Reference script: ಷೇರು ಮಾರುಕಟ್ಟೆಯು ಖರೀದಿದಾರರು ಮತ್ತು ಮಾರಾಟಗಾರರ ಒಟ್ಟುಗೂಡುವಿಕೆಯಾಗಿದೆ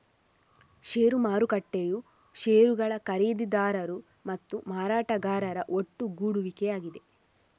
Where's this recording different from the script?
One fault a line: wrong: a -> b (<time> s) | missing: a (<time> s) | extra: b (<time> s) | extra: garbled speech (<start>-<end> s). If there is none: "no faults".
extra: ಷೇರುಗಳ (2.4 s)